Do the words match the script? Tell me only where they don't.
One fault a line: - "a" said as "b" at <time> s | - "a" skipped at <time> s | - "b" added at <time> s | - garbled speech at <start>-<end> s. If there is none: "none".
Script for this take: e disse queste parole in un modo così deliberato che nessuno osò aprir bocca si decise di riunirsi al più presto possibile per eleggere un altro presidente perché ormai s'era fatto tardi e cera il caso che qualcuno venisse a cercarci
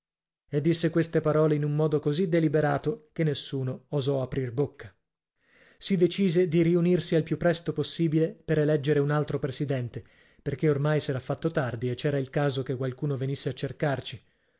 none